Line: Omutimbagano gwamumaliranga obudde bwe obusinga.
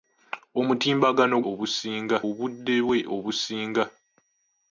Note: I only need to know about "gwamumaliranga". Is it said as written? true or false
false